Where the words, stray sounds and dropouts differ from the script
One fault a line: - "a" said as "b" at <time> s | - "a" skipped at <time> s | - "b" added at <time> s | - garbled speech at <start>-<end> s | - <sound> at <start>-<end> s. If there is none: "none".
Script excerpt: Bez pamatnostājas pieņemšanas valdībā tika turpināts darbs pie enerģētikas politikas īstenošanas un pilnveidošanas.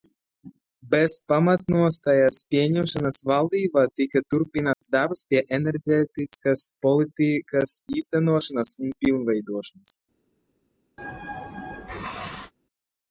- dropout at 4.7-4.8 s
- sneeze at 11.0-12.5 s